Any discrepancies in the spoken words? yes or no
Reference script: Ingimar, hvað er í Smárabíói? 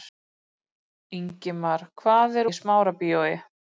no